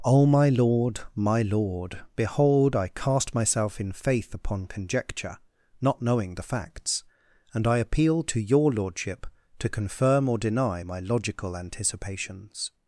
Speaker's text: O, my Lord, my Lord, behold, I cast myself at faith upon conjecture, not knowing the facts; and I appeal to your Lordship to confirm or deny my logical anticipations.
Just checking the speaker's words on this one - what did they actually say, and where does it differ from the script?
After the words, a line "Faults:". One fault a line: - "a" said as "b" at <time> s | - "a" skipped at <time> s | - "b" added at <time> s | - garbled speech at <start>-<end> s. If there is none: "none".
O, my Lord, my Lord, behold, I cast myself in faith upon conjecture, not knowing the facts; and I appeal to your Lordship to confirm or deny my logical anticipations.
Faults:
- "at" said as "in" at 3.8 s